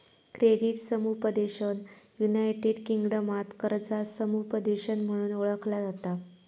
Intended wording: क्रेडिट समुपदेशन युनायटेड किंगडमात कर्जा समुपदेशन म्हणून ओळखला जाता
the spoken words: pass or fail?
pass